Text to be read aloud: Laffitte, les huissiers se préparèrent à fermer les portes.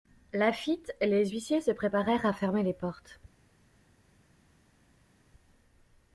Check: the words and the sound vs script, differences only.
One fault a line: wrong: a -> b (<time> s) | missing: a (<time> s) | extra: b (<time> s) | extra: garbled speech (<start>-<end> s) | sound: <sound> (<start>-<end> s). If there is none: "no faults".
no faults